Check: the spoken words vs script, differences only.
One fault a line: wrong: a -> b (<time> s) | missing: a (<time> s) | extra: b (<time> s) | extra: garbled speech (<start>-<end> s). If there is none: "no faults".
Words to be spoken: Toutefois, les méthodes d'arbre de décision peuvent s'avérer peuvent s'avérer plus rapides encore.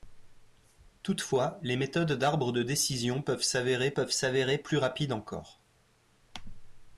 no faults